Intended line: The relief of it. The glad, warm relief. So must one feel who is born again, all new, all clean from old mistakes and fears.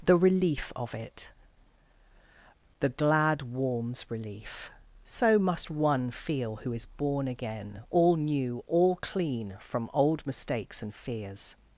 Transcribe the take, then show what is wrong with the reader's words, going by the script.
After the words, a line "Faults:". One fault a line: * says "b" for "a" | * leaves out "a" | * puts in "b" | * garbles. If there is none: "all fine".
The relief of it. The glad, warms relief. So must one feel who is born again, all new, all clean from old mistakes and fears.
Faults:
* says "warms" for "warm"